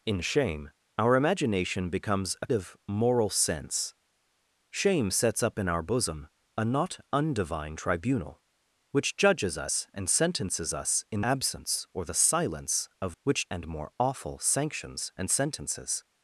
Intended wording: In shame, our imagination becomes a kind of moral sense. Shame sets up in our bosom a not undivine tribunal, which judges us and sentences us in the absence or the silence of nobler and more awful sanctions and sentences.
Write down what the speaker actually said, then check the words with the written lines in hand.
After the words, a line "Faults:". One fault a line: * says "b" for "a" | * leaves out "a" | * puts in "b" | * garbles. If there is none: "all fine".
In shame, our imagination becomes a of moral sense. Shame sets up in our bosom a not undivine tribunal, which judges us and sentences us in absence or the silence of which and more awful sanctions and sentences.
Faults:
* leaves out "kind"
* leaves out "the"
* says "which" for "nobler"